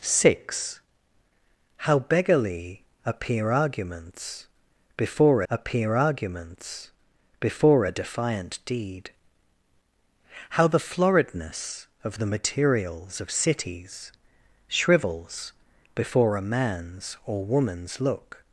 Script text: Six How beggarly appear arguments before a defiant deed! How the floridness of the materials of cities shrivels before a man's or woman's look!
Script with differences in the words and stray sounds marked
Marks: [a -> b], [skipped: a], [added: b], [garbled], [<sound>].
Six How beggarly appear arguments before [added: appear arguments before] a defiant deed! How the floridness of the materials of cities shrivels before a man's or woman's look!